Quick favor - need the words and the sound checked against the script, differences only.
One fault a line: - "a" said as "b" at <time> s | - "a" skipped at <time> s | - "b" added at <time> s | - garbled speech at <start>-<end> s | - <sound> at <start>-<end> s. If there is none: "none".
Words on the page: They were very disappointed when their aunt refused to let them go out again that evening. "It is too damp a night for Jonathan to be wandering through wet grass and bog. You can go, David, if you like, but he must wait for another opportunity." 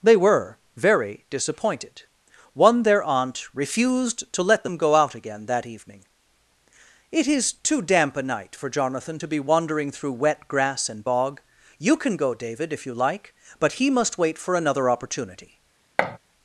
- "when" said as "one" at 2.5 s
- thud at 16.0-16.2 s